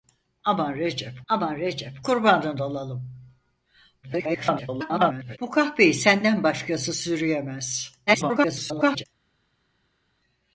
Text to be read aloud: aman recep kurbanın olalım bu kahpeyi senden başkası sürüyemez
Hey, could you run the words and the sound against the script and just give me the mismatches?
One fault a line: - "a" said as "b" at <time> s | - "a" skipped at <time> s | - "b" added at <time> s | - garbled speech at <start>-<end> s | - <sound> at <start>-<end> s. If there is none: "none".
- "aman recep" added at 1.3 s
- garbled speech at 4.0-5.4 s
- garbled speech at 8.1-9.0 s